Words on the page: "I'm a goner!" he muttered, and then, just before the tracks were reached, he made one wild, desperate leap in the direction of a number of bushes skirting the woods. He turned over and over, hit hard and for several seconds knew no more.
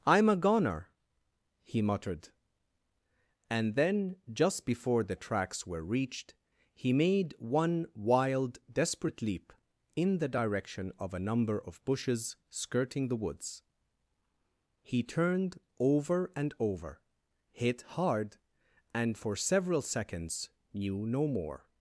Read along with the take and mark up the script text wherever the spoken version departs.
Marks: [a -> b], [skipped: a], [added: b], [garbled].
"I'm a goner!" he muttered, and then, just before the tracks were reached, he made one wild, desperate leap in the direction of a number of bushes skirting the woods. He turned over and over, hit hard and for several seconds knew no more.